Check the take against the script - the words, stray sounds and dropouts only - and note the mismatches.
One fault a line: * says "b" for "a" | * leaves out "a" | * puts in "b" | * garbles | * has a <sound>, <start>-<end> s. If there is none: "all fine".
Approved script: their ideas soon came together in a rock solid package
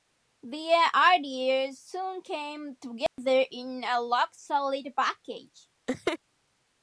* has a dropout, 3.1-3.2 s
* has a laugh, 5.9-6.2 s